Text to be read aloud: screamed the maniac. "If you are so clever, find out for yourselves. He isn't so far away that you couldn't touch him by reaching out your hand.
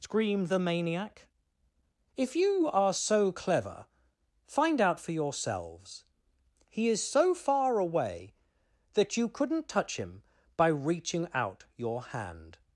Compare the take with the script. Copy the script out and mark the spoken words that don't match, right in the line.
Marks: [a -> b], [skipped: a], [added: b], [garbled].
screamed the maniac. "If you are so clever, find out for yourselves. He [isn't -> is] so far away that you couldn't touch him by reaching out your hand.